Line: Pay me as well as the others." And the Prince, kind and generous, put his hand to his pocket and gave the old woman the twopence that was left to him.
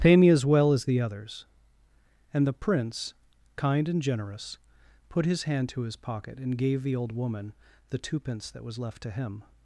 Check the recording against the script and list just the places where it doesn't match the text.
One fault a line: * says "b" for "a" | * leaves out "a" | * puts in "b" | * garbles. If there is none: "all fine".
all fine